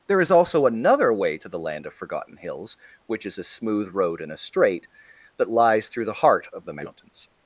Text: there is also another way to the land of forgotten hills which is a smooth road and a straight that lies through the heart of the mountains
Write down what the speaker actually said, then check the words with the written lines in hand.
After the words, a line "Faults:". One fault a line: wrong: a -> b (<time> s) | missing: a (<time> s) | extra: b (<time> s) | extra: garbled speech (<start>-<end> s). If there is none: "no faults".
there is also another way to the land of forgotten hills which is a smooth road and a straight that lies through the heart of the mountains
Faults:
no faults